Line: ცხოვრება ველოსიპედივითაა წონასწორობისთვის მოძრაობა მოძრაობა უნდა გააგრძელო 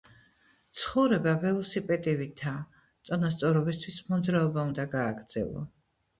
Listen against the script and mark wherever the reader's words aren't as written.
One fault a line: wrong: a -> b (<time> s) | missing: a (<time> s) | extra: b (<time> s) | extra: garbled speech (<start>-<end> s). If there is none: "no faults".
missing: მოძრაობა (4.7 s)